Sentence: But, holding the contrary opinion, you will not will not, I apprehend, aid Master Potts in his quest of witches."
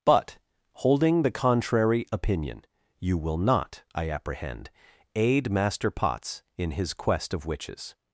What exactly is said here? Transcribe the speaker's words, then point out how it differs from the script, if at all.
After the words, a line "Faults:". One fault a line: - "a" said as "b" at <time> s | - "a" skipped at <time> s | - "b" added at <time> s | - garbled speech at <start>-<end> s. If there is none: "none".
But, holding the contrary opinion, you will not, I apprehend, aid Master Potts in his quest of witches."
Faults:
- "will not" skipped at 3.8 s